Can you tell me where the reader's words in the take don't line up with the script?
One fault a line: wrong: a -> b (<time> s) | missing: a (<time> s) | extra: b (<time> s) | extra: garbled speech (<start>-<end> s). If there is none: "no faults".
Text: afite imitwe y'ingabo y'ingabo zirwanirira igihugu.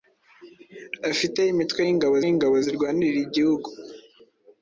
no faults